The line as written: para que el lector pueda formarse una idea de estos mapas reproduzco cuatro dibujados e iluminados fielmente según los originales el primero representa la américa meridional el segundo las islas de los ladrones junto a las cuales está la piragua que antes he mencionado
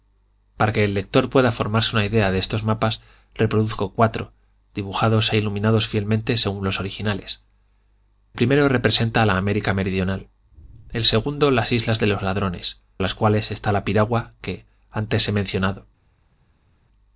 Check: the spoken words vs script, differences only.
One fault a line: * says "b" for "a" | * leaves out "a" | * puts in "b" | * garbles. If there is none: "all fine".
* leaves out "el"
* leaves out "junto"